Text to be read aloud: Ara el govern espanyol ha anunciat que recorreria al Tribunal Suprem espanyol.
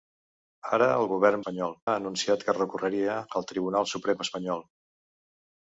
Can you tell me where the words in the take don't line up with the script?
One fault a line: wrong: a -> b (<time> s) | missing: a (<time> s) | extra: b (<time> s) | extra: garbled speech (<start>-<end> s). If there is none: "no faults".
no faults